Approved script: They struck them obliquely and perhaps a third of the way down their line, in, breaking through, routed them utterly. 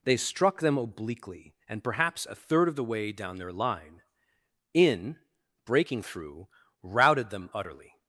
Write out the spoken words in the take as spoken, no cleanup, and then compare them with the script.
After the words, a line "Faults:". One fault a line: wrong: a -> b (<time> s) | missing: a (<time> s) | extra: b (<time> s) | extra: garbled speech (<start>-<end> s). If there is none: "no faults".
They struck them obliquely and perhaps a third of the way down their line, in, breaking through, routed them utterly.
Faults:
no faults